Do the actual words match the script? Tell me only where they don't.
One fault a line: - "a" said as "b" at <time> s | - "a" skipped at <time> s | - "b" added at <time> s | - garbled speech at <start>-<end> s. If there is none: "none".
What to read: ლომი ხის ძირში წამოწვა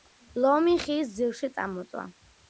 none